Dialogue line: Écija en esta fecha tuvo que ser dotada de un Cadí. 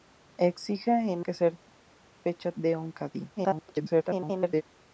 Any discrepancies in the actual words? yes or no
yes